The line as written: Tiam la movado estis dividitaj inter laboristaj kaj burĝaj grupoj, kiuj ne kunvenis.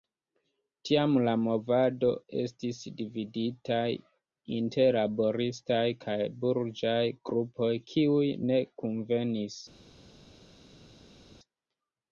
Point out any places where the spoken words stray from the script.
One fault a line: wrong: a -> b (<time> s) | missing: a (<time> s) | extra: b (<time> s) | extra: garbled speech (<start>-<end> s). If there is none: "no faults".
no faults